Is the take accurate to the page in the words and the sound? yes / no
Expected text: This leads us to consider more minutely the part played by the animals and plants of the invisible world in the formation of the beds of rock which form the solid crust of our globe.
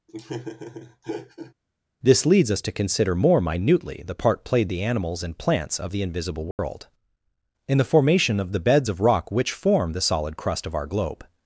no